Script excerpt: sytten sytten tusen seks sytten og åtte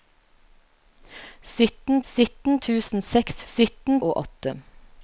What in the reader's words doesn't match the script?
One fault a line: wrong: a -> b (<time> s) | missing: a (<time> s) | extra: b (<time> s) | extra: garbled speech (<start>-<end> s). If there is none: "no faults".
no faults